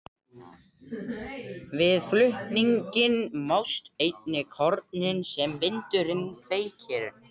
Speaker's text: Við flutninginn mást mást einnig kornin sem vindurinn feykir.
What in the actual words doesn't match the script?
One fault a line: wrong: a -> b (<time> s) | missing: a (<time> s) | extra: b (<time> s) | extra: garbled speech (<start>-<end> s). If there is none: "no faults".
missing: mást (3.9 s)